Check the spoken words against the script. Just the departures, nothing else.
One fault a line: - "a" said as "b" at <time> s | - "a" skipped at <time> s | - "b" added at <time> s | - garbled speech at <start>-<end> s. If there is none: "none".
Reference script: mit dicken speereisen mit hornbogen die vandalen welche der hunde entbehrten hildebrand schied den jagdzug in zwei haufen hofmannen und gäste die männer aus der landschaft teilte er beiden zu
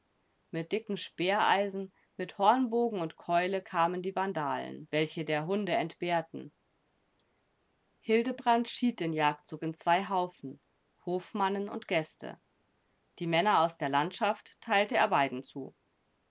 - "und keule kamen" added at 3.0 s